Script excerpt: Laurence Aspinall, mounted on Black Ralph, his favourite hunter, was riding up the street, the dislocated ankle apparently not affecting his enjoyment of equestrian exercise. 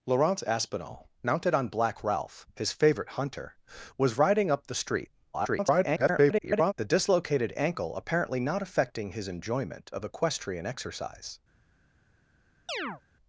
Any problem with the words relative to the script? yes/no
yes